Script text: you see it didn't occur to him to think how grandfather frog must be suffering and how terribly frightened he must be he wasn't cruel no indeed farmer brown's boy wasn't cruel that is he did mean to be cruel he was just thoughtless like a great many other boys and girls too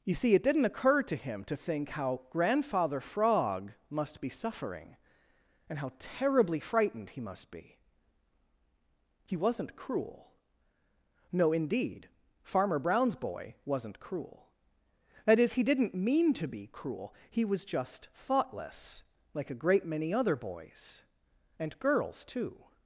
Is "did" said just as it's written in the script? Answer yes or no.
no